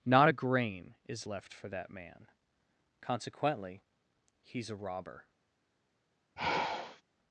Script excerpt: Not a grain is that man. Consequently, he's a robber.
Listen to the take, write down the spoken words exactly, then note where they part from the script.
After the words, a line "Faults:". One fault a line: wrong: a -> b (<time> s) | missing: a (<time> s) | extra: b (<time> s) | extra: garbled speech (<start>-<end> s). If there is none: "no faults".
Not a grain is left for that man. Consequently, he's a robber.
Faults:
extra: left for (1.2 s)